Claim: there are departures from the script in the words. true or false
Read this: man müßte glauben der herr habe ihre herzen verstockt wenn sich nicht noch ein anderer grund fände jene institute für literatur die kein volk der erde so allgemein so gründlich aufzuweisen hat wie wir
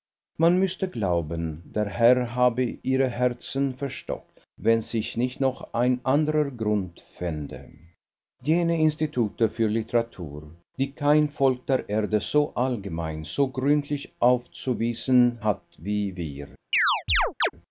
false